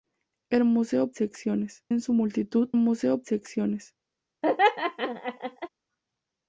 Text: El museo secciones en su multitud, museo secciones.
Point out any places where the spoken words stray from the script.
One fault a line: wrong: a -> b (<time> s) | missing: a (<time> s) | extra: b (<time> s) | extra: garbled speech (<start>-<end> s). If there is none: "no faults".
no faults